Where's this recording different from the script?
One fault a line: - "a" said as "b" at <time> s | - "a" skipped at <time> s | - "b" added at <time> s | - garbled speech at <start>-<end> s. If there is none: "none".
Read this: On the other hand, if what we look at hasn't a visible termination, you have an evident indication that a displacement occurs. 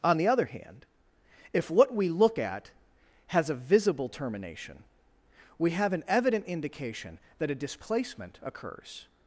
- "hasn't" said as "has" at 3.3 s
- "you" said as "we" at 5.6 s